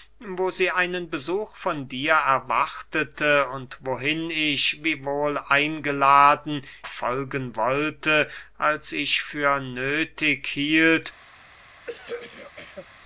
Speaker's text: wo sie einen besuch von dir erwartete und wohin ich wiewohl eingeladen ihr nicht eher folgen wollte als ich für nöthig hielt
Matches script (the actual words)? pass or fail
fail